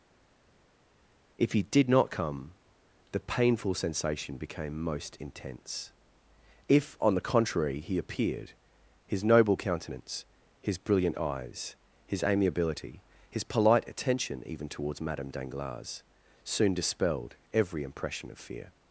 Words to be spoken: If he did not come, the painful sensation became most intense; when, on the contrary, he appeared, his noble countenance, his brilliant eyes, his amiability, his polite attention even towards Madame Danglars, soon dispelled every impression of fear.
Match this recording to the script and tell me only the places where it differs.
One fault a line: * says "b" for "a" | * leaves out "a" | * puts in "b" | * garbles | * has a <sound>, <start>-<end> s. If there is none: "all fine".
* says "if" for "when"